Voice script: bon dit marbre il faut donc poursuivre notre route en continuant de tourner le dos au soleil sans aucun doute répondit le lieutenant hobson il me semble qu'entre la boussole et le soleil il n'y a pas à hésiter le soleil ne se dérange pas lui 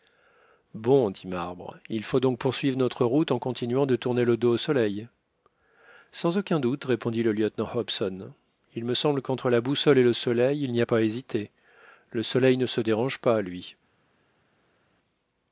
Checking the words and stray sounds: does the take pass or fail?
pass